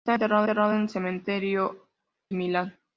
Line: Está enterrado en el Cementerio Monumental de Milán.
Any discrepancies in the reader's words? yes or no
yes